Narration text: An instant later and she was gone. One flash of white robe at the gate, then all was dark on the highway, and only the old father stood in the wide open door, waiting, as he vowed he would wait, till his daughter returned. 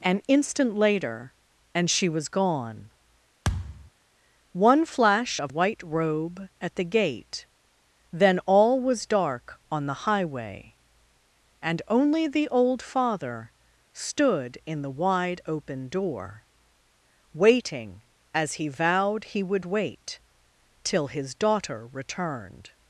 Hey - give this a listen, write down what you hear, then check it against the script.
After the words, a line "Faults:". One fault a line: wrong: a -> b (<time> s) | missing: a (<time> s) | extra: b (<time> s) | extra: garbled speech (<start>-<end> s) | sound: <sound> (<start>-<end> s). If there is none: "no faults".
An instant later and she was gone. One flash of white robe at the gate, then all was dark on the highway, and only the old father stood in the wide open door, waiting, as he vowed he would wait, till his daughter returned.
Faults:
sound: thud (3.4-3.9 s)